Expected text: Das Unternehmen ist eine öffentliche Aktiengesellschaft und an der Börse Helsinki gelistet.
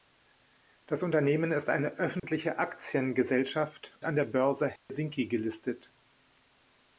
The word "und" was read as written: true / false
false